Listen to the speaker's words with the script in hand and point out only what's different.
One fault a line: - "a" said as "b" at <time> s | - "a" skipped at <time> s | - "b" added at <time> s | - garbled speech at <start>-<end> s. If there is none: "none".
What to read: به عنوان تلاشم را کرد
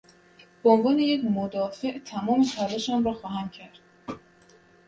- "یک مدافع تمام" added at 1.0 s
- "خواهم" added at 3.1 s